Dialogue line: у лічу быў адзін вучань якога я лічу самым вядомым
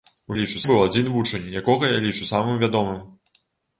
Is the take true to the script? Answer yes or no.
yes